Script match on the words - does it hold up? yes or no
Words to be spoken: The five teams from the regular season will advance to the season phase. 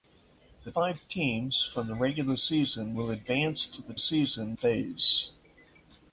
yes